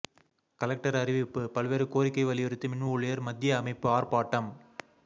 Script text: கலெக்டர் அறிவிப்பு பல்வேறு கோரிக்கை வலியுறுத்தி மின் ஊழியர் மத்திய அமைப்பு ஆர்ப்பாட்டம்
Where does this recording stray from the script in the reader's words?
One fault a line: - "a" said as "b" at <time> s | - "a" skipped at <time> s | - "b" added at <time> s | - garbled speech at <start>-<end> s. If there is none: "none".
none